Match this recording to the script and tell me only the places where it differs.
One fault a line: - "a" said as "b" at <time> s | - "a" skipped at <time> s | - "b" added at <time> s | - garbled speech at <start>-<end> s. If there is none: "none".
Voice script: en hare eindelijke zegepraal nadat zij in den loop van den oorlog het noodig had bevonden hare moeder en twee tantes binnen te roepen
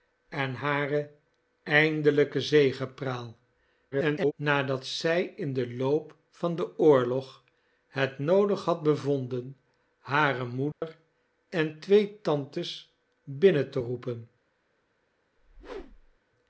- garbled speech at 3.9-4.3 s